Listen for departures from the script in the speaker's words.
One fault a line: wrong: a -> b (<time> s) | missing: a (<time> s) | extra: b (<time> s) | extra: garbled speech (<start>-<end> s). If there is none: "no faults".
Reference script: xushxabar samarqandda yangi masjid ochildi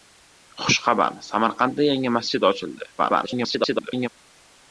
extra: garbled speech (3.0-4.1 s)